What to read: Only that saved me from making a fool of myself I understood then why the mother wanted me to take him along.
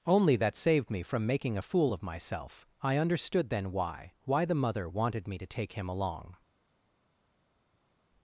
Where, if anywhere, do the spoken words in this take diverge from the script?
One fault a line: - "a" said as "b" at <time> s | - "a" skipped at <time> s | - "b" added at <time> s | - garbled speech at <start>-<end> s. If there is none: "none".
- "why" added at 4.2 s